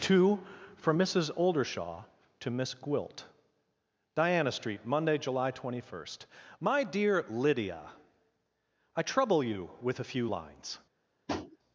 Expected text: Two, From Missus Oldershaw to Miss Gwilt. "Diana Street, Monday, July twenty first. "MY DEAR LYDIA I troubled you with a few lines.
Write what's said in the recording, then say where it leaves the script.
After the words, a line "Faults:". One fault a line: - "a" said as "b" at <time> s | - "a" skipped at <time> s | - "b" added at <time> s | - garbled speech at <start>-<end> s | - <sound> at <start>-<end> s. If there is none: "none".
Two, From Missus Oldershaw to Miss Gwilt. "Diana Street, Monday, July twenty first. "MY DEAR LYDIA I trouble you with a few lines.
Faults:
- "troubled" said as "trouble" at 9.0 s
- tap at 11.3-11.6 s